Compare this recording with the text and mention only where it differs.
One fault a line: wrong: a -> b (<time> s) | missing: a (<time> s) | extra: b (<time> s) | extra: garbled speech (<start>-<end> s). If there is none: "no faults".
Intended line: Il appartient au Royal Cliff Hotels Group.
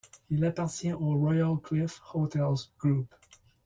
no faults